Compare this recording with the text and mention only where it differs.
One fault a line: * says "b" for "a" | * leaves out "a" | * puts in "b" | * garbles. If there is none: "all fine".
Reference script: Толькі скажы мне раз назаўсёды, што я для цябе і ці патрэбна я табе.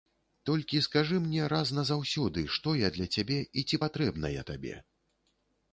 all fine